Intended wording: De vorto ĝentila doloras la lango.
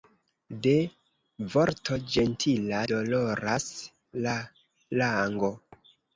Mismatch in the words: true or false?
false